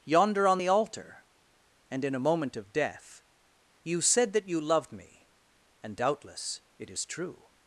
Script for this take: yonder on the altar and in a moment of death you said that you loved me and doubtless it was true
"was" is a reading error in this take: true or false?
true